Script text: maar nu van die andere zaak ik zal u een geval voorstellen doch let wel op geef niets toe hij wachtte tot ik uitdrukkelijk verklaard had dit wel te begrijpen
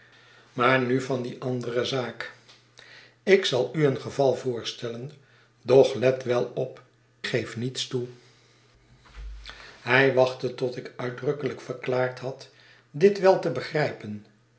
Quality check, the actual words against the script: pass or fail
pass